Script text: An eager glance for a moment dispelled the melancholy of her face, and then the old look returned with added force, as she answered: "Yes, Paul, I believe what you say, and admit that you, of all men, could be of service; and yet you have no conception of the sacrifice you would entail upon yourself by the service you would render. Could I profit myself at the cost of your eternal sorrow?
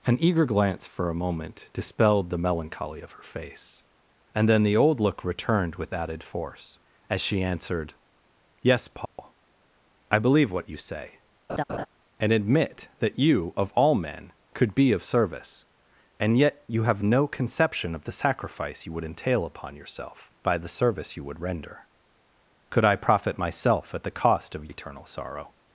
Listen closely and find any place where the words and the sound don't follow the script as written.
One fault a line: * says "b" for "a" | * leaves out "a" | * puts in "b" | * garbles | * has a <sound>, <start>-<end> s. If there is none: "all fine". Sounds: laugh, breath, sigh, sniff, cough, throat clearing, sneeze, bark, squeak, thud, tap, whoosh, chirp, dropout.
* has a dropout, 9.1-9.2 s
* has a laugh, 11.5-11.9 s
* leaves out "your"